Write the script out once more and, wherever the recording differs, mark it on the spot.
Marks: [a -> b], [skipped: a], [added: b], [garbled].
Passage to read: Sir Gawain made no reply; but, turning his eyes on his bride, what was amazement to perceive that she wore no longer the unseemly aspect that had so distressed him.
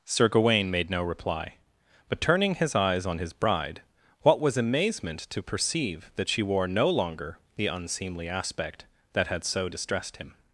Sir Gawain made no reply; but, turning his eyes on his bride, what was amazement to perceive that she wore no longer the unseemly aspect that had so distressed him.